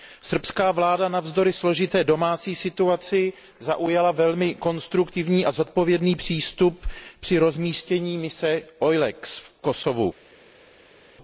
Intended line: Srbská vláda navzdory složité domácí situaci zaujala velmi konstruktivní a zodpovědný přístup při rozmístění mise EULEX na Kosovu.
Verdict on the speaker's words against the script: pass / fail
fail